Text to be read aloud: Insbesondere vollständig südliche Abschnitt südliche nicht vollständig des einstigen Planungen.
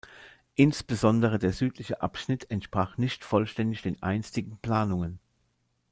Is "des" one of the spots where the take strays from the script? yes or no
yes